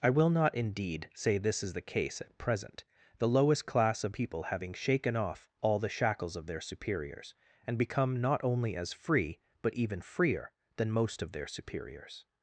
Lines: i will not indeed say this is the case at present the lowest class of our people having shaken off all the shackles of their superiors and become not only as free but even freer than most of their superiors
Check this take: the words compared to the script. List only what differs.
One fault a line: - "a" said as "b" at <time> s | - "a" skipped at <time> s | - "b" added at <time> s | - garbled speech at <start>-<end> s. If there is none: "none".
- "our" skipped at 4.2 s